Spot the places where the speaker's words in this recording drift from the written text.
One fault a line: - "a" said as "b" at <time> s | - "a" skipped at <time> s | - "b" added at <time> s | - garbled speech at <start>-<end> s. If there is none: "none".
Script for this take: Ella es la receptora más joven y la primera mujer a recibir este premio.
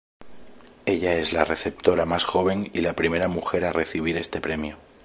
none